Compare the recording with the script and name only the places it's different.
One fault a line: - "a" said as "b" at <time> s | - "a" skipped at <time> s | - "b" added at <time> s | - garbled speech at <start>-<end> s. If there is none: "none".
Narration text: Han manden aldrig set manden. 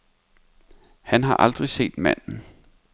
- "manden" said as "har" at 1.2 s